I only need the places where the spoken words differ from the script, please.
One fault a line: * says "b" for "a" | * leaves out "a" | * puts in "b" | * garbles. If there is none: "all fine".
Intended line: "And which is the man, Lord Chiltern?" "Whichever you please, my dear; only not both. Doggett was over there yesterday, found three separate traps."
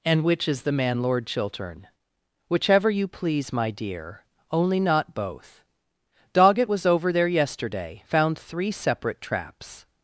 all fine